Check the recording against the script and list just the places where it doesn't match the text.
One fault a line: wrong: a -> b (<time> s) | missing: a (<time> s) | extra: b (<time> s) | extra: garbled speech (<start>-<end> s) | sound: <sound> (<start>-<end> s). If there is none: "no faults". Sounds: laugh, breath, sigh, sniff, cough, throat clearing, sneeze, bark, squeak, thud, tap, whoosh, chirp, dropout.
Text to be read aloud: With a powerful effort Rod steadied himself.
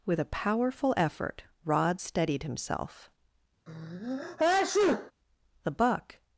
sound: sneeze (3.7-5.1 s)
extra: The buck (5.6 s)